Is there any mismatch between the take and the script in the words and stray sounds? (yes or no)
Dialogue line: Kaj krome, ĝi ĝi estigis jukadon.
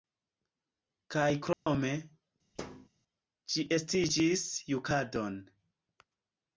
yes